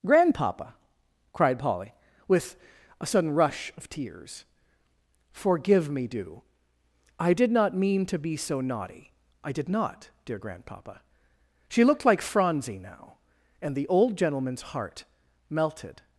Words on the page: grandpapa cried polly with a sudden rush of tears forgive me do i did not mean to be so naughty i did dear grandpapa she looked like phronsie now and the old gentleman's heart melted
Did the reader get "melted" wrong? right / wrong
right